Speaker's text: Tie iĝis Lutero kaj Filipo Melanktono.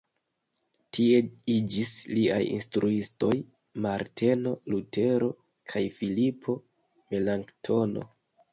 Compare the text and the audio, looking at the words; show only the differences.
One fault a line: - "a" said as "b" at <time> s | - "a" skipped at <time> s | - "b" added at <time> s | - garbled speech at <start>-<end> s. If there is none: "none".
- "liaj instruistoj Marteno" added at 2.2 s